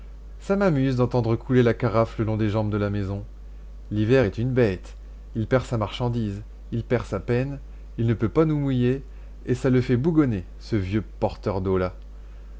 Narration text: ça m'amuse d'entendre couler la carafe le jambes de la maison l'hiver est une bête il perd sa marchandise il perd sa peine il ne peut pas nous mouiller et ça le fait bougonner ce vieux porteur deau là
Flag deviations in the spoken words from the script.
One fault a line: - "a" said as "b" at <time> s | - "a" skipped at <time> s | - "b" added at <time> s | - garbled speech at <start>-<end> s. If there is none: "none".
- "long des" added at 2.2 s